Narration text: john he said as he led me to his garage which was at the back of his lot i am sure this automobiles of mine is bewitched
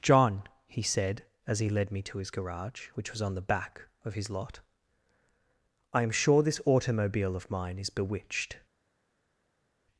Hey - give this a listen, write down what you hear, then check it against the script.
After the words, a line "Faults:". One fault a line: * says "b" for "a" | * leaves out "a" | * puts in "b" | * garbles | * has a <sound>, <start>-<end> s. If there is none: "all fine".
john he said as he led me to his garage which was on the back of his lot i am sure this automobile of mine is bewitched
Faults:
* says "on" for "at"
* says "automobile" for "automobiles"